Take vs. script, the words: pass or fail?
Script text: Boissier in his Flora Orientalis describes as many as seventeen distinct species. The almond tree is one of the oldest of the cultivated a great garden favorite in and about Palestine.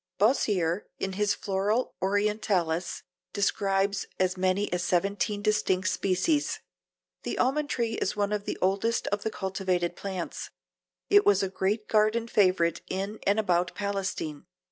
fail